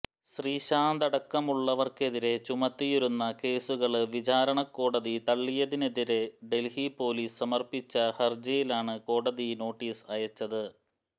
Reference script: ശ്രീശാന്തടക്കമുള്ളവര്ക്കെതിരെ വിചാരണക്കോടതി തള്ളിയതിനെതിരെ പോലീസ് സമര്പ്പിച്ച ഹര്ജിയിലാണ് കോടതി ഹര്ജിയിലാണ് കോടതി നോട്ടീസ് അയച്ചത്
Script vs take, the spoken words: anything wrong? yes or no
yes